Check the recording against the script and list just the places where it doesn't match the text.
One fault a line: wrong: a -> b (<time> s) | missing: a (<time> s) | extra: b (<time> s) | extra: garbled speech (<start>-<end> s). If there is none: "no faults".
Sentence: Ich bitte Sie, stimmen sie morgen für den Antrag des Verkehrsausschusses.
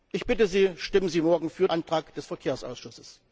missing: den (1.7 s)